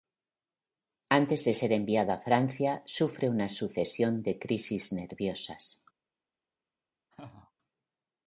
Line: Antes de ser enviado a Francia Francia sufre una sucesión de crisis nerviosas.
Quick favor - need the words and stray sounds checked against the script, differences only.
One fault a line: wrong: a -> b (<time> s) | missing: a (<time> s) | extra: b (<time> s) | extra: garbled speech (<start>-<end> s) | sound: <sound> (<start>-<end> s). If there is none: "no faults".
missing: Francia (2.8 s)
sound: laugh (7.1-7.5 s)